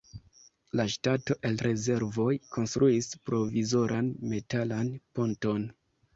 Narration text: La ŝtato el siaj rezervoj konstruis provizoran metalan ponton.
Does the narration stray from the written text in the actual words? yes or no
yes